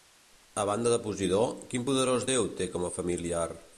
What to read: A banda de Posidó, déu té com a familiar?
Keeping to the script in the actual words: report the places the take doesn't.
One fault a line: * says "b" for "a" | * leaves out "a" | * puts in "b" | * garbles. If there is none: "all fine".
* puts in "quin poderós"